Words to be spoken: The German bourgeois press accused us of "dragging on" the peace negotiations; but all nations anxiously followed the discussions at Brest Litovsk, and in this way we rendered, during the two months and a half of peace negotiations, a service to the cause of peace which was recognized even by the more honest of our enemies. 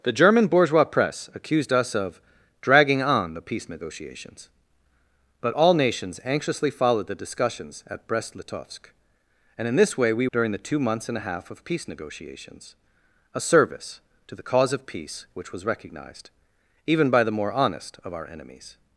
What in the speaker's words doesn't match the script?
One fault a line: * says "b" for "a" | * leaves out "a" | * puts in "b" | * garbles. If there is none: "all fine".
* leaves out "rendered"